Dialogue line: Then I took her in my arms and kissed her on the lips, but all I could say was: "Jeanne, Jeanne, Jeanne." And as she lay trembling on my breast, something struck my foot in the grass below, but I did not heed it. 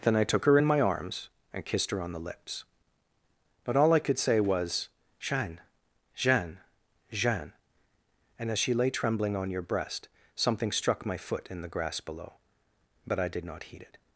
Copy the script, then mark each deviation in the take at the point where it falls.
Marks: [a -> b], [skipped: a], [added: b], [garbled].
Then I took her in my arms and kissed her on the lips, but all I could say was: "Jeanne, Jeanne, Jeanne." And as she lay trembling on [my -> your] breast, something struck my foot in the grass below, but I did not heed it.